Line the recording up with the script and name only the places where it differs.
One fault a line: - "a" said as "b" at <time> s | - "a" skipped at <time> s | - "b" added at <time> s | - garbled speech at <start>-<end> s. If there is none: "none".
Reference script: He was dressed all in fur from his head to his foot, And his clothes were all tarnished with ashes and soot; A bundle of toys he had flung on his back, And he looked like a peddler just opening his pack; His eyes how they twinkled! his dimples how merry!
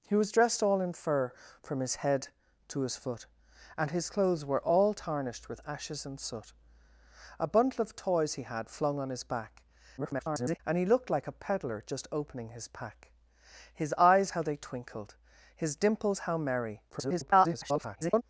- garbled speech at 10.0-10.6 s
- garbled speech at 16.9-18.2 s